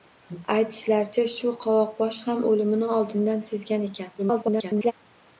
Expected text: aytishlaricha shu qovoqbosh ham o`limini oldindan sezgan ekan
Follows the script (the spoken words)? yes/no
no